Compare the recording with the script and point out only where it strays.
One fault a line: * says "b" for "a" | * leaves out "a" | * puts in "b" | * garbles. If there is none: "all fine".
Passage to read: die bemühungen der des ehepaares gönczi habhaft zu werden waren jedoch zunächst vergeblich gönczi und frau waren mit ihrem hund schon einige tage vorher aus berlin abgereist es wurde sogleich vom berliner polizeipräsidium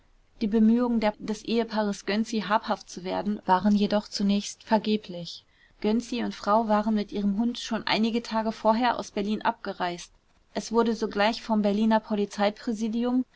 all fine